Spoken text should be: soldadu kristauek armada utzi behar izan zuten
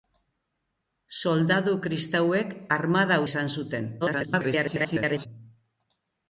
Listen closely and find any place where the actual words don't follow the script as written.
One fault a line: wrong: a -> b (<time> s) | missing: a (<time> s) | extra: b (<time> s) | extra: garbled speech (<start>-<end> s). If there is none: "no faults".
missing: utzi behar (3.2 s)
extra: garbled speech (4.0-5.3 s)